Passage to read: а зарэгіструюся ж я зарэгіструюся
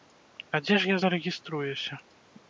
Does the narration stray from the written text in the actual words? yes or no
yes